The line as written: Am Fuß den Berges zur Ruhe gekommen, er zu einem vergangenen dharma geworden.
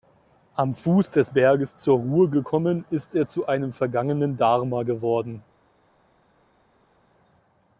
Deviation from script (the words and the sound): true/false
true